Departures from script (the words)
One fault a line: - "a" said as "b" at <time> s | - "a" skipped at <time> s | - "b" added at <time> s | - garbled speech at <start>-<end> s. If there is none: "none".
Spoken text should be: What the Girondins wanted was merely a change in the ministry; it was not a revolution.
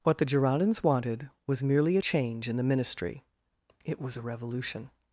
- "not" skipped at 4.1 s